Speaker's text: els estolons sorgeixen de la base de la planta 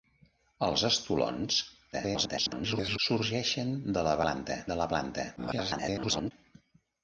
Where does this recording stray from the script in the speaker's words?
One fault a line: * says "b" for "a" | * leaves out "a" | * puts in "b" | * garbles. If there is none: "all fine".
* garbles
* says "planta" for "base"
* garbles